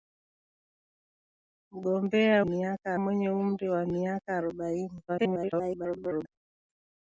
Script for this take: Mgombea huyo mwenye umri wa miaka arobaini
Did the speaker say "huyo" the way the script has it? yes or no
no